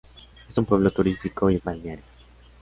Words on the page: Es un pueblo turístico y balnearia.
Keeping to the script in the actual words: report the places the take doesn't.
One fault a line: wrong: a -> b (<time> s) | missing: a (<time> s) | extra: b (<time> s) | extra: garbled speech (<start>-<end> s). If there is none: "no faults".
no faults